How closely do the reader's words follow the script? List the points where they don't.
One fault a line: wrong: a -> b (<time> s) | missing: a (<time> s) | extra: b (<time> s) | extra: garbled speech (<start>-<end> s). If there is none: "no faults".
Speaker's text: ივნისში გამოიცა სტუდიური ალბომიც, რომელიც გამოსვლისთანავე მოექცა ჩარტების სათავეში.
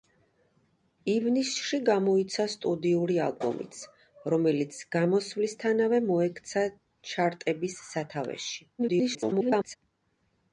extra: garbled speech (8.8-9.8 s)